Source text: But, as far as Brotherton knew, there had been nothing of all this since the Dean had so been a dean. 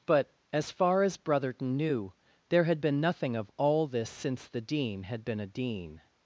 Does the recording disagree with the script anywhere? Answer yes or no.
yes